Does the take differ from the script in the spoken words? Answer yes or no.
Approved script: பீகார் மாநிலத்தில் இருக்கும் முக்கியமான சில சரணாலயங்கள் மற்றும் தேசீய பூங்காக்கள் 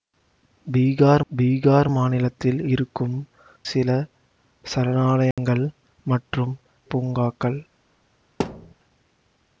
yes